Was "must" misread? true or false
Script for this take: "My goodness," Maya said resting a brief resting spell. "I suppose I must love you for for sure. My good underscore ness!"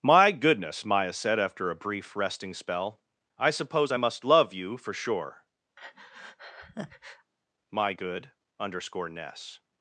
false